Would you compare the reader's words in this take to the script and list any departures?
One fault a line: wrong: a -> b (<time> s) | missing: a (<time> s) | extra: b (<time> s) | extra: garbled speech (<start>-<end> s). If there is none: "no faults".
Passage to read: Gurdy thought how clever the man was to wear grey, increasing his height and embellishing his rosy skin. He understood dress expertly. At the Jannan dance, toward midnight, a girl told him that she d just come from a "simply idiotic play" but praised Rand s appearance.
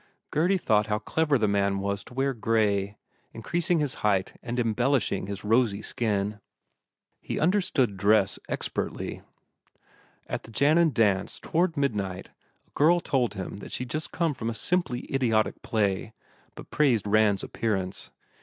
no faults